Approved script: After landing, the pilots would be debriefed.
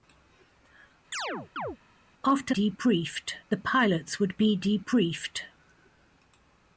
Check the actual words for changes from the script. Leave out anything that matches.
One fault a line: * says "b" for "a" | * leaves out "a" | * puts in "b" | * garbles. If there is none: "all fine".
* says "debriefed" for "landing"